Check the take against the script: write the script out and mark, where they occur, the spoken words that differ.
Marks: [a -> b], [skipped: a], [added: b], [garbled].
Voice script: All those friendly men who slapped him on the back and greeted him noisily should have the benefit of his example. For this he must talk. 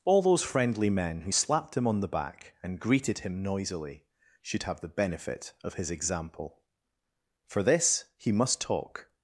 All those friendly men who slapped him on the back and greeted him noisily should have the benefit of his example. For this he must talk.